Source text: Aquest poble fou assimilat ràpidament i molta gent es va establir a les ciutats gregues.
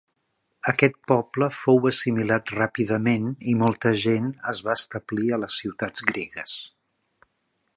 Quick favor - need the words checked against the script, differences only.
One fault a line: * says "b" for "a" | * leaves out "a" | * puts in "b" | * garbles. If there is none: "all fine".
all fine